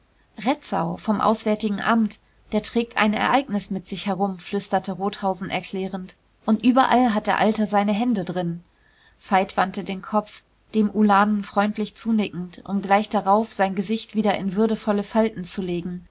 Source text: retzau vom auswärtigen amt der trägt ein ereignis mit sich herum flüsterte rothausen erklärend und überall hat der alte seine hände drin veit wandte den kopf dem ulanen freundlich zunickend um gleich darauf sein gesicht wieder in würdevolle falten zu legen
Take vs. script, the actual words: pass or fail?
pass